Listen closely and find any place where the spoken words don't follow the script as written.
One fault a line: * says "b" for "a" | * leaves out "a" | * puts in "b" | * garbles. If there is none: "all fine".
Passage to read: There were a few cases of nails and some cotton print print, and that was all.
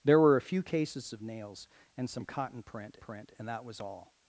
all fine